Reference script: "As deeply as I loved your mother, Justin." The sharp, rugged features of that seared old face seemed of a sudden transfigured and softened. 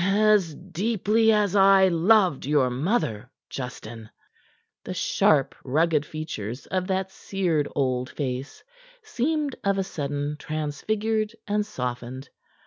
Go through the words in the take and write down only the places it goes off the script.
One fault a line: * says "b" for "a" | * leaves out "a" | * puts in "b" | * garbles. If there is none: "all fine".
all fine